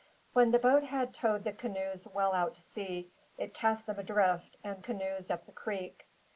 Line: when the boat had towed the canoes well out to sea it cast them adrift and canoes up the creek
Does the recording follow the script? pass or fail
pass